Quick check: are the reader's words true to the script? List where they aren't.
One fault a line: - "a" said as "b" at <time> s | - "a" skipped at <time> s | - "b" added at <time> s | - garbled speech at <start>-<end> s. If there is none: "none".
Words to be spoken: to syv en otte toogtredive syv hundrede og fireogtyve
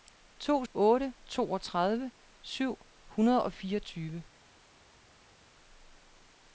- "syv en" skipped at 0.7 s